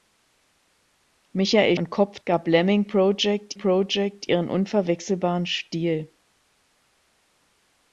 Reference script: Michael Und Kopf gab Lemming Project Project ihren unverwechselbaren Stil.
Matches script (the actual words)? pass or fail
pass